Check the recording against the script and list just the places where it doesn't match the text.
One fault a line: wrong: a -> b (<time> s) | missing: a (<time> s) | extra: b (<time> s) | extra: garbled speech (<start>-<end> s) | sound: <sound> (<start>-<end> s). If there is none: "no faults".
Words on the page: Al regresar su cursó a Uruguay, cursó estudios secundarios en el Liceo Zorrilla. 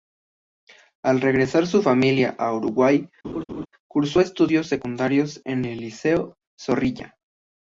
wrong: cursó -> familia (1.8 s)
sound: laugh (3.2-3.7 s)